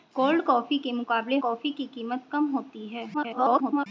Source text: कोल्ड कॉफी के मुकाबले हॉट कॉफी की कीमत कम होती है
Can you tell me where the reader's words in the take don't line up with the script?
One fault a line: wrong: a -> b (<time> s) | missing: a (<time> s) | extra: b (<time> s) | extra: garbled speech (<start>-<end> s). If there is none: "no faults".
missing: हॉट (1.4 s)
extra: garbled speech (3.1-3.9 s)